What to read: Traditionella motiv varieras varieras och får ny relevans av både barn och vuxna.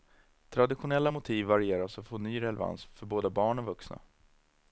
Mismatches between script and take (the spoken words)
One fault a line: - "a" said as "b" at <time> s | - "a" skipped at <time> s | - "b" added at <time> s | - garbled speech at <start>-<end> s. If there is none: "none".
- "varieras" skipped at 2.0 s
- "av" said as "för" at 2.8 s